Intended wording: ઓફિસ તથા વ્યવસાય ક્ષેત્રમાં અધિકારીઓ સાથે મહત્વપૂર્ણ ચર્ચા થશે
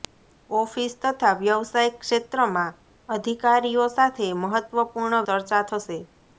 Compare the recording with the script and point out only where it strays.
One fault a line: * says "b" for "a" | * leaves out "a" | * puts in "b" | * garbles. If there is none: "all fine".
all fine